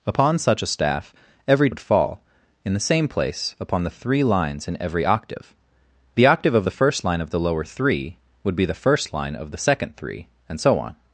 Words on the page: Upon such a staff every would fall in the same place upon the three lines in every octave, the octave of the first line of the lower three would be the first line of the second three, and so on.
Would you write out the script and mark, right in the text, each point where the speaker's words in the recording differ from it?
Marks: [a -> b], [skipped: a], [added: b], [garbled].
Upon such a staff every would fall in the same place upon the three lines in every octave, the octave of the first line of the lower three would be the first line of the second three, and so on.